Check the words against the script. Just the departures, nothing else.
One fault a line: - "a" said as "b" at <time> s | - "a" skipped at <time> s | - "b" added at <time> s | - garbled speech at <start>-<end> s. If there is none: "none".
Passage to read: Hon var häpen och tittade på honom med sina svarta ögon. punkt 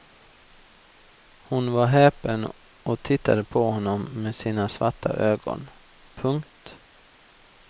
none